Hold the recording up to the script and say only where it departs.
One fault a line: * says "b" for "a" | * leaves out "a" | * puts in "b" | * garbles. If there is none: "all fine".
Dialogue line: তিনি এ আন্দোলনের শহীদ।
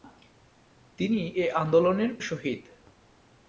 all fine